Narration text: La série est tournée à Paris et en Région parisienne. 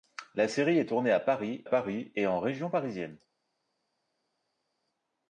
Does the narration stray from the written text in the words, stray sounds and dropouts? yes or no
yes